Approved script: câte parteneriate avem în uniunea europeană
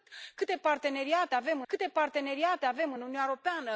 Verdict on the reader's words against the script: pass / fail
fail